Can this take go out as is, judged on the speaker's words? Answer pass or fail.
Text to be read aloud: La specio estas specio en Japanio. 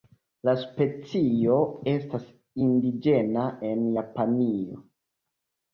fail